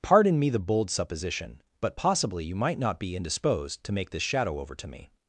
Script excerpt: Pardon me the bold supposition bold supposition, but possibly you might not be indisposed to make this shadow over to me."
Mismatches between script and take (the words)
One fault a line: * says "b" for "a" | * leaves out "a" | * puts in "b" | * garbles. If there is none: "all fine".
* leaves out "bold supposition"